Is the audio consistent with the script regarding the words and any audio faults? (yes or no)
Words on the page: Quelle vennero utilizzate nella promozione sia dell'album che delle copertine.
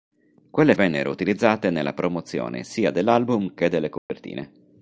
no